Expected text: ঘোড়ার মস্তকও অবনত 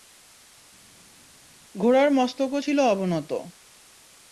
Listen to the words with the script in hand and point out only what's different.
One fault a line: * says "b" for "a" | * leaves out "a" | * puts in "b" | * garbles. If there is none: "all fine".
* puts in "ছিল"